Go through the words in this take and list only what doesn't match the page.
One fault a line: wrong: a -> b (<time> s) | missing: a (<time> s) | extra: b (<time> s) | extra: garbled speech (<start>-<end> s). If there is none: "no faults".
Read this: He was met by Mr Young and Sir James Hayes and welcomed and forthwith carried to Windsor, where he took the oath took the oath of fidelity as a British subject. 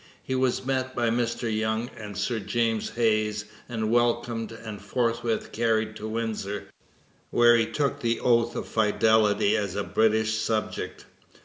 missing: took the oath (8.5 s)